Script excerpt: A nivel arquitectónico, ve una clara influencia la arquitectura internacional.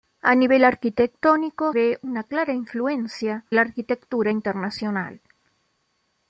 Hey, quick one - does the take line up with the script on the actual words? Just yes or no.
yes